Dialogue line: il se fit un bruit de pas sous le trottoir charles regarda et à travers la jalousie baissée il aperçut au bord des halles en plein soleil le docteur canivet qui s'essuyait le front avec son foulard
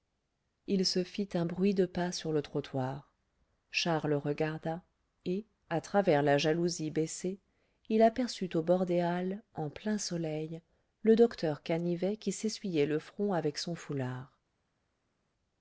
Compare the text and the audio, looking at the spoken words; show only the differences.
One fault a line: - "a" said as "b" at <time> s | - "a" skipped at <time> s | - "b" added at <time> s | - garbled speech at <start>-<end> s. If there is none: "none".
- "sous" said as "sur" at 2.1 s